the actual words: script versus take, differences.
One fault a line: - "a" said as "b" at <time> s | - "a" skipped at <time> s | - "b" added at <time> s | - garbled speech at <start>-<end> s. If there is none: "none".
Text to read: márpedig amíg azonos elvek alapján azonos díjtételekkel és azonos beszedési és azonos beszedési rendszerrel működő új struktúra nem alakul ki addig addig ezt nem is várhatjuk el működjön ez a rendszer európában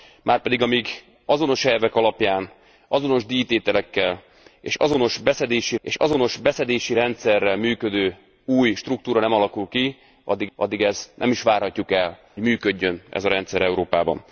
none